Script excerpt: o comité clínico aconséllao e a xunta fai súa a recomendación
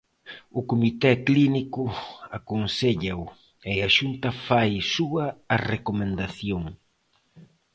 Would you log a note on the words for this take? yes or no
no